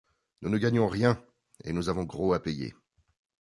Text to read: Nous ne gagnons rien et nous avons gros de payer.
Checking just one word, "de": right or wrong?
wrong